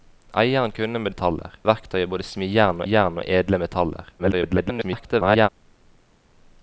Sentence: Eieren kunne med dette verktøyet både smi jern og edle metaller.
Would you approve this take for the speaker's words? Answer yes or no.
no